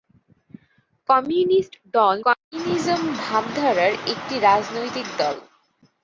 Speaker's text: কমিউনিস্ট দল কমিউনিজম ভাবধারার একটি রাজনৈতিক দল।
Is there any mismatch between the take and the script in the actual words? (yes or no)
no